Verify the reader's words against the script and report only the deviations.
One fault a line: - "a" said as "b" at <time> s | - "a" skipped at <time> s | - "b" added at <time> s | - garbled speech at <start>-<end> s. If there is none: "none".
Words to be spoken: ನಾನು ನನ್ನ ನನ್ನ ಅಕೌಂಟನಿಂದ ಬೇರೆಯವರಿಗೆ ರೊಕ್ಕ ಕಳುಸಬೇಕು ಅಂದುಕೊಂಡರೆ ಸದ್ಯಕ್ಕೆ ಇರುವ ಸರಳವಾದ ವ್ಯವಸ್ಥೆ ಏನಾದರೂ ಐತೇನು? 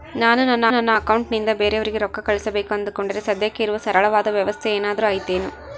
none